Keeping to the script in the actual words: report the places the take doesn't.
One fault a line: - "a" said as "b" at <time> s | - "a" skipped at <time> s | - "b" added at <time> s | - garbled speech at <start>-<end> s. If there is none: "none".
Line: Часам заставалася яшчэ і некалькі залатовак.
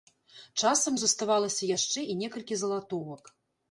none